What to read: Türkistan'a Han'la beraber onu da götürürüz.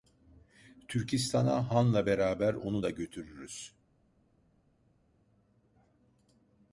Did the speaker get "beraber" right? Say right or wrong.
right